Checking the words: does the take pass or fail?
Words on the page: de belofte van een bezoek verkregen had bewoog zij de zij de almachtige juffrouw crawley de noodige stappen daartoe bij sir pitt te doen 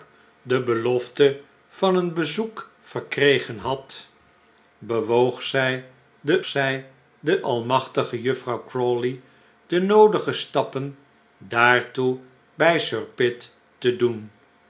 pass